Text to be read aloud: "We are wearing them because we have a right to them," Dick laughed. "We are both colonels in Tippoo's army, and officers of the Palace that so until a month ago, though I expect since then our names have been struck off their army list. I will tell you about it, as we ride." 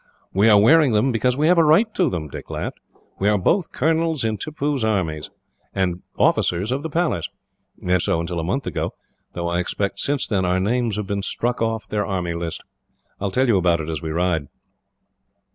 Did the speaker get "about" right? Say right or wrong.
right